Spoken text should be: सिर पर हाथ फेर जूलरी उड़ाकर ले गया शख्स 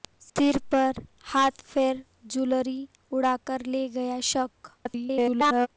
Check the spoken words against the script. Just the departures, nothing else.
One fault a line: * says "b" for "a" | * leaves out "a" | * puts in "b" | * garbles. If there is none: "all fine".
* garbles